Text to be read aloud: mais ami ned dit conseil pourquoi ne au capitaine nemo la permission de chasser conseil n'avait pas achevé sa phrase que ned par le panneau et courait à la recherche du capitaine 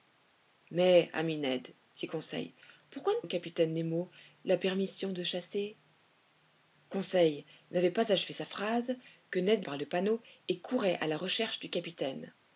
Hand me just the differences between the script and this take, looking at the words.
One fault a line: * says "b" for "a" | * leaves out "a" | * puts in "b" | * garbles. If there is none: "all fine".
all fine